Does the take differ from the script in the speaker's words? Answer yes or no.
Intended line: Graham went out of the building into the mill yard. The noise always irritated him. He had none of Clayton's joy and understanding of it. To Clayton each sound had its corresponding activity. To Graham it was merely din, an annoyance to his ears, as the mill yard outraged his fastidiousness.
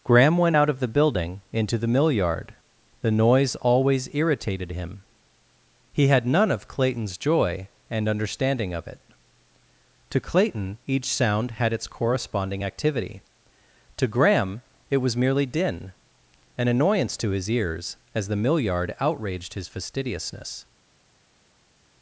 no